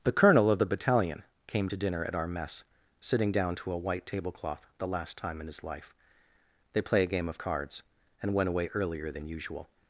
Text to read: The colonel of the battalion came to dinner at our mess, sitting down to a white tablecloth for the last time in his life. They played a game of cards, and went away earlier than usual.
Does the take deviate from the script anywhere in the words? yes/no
yes